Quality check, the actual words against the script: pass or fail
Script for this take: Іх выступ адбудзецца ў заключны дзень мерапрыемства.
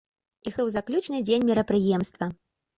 fail